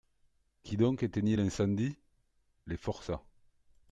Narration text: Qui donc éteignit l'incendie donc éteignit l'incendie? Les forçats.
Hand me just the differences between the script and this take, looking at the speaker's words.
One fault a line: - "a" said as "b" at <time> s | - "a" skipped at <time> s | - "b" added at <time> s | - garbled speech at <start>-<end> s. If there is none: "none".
- "donc éteignit l'incendie" skipped at 2.0 s